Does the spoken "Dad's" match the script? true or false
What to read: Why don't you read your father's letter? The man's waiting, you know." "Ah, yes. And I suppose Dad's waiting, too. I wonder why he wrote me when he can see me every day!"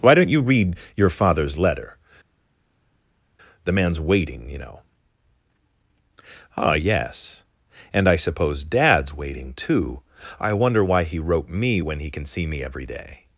true